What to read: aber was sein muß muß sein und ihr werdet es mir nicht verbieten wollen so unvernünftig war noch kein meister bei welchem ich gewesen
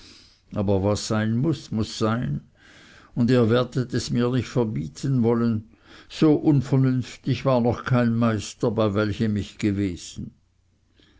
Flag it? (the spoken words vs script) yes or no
no